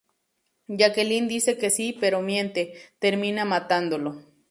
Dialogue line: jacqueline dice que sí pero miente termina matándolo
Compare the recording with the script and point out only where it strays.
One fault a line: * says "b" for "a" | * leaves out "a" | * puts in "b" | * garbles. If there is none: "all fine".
all fine